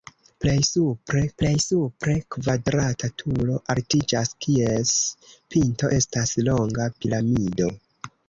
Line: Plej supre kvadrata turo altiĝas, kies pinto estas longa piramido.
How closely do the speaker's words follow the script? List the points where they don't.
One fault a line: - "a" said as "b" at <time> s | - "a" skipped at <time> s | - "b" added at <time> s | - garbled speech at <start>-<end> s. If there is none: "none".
- "plej supre" added at 1.4 s